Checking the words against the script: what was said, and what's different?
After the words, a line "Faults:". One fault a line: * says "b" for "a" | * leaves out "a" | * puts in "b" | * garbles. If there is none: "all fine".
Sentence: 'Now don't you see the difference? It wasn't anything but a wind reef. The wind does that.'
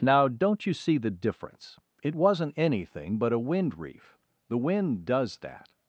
'Now don't you see the difference? It wasn't anything but a wind reef. The wind does that.'
Faults:
all fine